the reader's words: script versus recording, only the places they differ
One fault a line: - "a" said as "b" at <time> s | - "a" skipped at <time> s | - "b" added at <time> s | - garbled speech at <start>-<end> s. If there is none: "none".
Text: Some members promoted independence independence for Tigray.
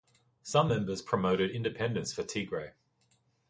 - "independence" skipped at 2.1 s